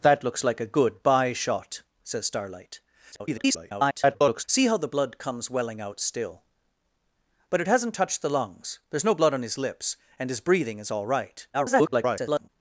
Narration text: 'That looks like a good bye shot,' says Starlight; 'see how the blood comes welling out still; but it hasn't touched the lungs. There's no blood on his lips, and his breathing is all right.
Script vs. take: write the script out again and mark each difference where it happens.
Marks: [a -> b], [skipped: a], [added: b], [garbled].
'That looks like a good bye shot,' says Starlight; [garbled] 'see how the blood comes welling out still; but it hasn't touched the lungs. There's no blood on his lips, and his breathing is all right. [garbled]